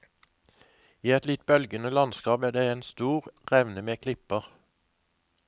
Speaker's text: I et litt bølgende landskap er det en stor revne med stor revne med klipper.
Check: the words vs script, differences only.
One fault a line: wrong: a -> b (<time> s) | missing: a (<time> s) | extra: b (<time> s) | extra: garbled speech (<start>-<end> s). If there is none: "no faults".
missing: stor revne med (4.0 s)